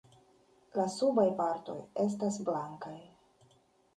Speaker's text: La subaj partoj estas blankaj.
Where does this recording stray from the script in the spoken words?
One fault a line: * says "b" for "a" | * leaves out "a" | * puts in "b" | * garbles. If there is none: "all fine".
all fine